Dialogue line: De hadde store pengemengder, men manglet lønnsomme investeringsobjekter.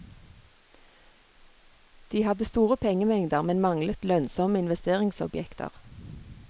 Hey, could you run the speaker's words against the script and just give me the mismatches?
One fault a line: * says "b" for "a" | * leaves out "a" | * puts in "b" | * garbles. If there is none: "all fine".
all fine